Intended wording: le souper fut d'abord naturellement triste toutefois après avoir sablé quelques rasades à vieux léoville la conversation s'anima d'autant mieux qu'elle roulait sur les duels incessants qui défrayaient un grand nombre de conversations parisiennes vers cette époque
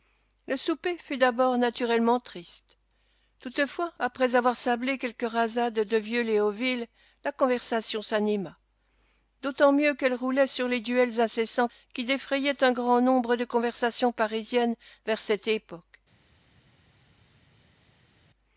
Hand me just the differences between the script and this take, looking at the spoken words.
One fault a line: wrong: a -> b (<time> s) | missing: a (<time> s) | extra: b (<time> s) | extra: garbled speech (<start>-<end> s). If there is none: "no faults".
wrong: à -> de (5.8 s)